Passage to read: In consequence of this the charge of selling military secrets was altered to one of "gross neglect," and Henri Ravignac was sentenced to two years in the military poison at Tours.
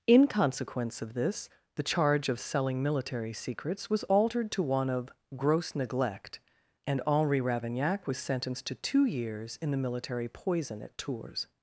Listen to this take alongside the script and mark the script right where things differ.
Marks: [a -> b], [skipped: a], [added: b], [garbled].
In consequence of this the charge of selling military secrets was altered to one of "gross neglect," and Henri Ravignac was sentenced to two years in the military poison at Tours.